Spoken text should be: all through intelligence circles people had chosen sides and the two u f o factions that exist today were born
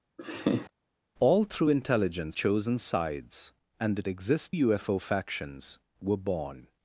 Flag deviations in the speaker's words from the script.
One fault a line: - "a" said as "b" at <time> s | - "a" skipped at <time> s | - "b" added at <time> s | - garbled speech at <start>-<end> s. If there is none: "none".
- "circles people had" skipped at 2.4 s
- "two" said as "exist" at 4.1 s
- "that exist today" skipped at 5.8 s